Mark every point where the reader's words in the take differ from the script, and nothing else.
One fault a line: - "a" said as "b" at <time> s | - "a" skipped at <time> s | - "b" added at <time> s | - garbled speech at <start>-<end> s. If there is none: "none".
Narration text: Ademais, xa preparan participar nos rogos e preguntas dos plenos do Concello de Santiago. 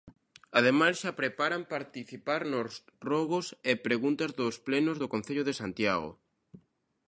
none